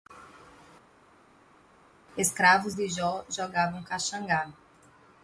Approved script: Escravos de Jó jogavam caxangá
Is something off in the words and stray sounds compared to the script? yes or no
no